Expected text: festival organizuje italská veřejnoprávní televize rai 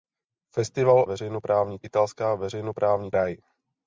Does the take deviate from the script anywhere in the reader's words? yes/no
yes